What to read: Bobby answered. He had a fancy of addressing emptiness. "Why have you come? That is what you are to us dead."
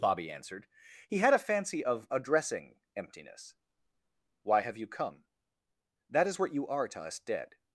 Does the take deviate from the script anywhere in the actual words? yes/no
no